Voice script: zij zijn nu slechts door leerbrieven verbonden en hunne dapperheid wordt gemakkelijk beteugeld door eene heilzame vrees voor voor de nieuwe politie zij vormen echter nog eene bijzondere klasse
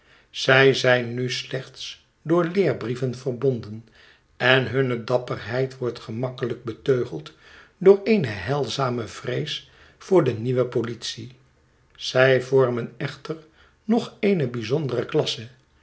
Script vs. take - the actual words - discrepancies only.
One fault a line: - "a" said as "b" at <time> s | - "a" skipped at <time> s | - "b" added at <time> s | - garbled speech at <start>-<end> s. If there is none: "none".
- "voor" skipped at 10.2 s